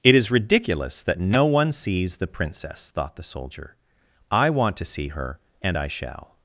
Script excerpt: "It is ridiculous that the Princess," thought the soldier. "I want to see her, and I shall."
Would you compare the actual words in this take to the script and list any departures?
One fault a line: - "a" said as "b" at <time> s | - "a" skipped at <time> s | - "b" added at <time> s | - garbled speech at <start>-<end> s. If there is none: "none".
- "no one sees" added at 1.2 s